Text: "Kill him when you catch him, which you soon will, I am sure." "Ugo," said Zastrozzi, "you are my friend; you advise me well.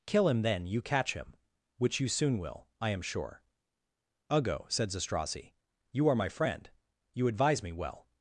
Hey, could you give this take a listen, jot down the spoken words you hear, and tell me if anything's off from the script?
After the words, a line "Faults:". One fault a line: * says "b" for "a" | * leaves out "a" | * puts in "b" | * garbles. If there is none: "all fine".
"Kill him then you catch him, which you soon will, I am sure." "Ugo," said Zastrozzi, "you are my friend; you advise me well.
Faults:
* says "then" for "when"